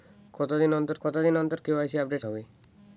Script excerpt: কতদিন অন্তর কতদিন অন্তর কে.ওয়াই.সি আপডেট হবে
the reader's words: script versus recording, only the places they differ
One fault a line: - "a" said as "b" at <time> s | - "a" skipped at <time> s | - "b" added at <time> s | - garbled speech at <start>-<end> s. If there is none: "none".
none